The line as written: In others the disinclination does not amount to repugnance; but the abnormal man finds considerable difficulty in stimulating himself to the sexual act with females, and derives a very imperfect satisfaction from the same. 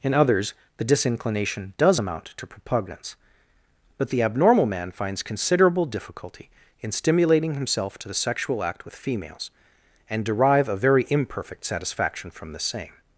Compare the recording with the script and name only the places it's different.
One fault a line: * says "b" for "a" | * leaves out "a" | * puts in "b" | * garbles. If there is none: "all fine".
* leaves out "not"
* says "derive" for "derives"